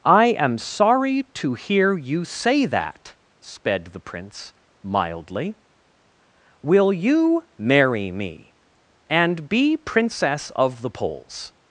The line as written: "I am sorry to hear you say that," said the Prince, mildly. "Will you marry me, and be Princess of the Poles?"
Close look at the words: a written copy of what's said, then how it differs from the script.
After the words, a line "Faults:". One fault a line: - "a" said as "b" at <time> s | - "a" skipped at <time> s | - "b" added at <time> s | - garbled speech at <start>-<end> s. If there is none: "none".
"I am sorry to hear you say that," sped the Prince, mildly. "Will you marry me, and be Princess of the Poles?"
Faults:
- "said" said as "sped" at 3.4 s